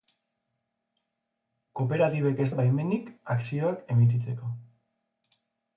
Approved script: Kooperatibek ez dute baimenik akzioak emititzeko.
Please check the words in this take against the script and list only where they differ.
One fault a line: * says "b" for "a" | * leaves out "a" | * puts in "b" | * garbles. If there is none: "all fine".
* leaves out "dute"